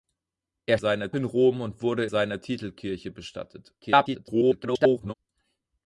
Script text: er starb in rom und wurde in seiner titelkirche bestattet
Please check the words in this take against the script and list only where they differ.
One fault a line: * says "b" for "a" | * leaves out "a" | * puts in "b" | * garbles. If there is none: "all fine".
* says "seiner" for "starb"
* leaves out "in"
* garbles